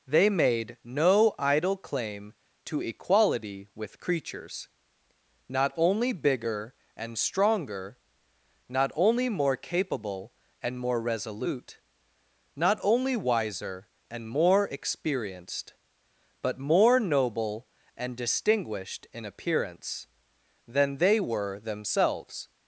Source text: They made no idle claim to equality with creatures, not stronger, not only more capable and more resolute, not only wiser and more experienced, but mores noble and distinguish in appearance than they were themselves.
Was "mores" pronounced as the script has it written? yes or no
no